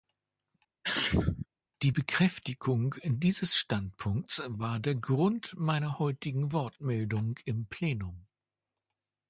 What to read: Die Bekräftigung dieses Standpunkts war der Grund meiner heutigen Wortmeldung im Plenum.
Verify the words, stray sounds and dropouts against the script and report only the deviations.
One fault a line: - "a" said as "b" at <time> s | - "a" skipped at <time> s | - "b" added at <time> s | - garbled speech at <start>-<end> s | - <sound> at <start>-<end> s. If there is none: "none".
- sneeze at 0.8-1.5 s